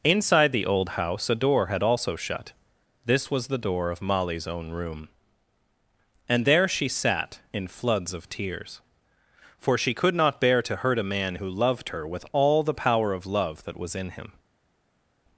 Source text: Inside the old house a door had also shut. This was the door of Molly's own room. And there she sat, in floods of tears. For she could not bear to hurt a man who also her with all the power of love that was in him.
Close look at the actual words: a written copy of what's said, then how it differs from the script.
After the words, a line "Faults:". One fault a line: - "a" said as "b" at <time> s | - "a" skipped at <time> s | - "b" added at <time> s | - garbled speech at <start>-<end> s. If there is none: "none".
Inside the old house a door had also shut. This was the door of Molly's own room. And there she sat, in floods of tears. For she could not bear to hurt a man who loved her with all the power of love that was in him.
Faults:
- "also" said as "loved" at 11.5 s